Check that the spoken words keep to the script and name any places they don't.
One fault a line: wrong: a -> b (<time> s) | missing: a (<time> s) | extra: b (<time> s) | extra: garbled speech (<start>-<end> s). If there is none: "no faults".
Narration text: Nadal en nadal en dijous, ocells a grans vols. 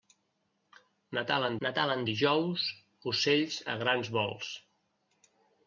no faults